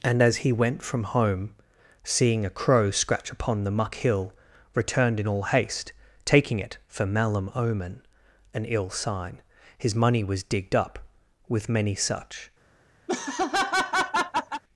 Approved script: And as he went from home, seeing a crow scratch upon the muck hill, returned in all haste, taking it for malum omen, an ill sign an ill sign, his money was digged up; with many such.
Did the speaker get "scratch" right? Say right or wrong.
right